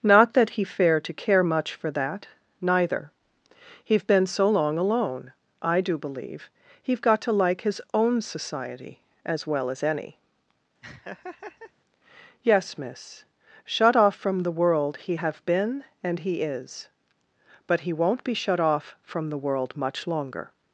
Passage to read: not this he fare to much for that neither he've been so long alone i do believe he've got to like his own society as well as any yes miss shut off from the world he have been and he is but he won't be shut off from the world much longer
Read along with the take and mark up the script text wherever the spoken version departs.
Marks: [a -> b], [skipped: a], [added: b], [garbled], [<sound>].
not [this -> that] he fare to [added: care] much for that neither he've been so long alone i do believe he've got to like his own society as well as any [laugh] yes miss shut off from the world he have been and he is but he won't be shut off from the world much longer